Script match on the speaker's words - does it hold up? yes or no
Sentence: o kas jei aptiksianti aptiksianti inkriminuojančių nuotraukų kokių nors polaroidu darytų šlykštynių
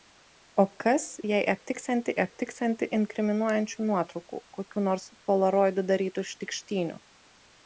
yes